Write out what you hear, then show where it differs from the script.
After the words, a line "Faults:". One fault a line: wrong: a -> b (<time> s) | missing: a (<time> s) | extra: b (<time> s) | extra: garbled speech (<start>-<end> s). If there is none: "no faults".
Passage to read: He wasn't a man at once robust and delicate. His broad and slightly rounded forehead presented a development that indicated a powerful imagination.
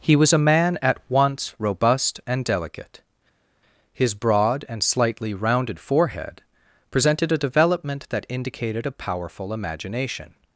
He was a man at once robust and delicate. His broad and slightly rounded forehead presented a development that indicated a powerful imagination.
Faults:
wrong: wasn't -> was (0.1 s)